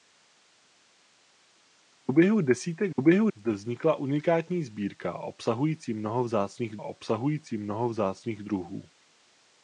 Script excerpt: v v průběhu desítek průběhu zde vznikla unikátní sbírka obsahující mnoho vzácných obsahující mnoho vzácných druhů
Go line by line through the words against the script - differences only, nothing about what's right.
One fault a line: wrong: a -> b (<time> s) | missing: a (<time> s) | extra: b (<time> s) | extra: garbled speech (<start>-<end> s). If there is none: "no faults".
no faults